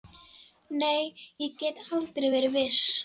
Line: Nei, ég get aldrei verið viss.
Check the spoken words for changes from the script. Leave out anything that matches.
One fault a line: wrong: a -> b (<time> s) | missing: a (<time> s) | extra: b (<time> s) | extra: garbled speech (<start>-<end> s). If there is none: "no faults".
no faults